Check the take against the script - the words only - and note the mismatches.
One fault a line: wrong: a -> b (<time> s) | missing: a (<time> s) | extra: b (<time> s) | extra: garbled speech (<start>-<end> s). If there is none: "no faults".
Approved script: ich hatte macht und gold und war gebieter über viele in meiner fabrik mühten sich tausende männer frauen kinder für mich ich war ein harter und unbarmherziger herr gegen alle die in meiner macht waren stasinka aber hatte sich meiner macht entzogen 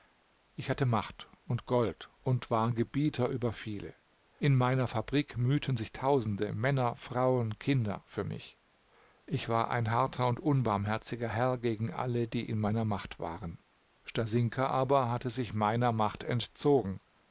no faults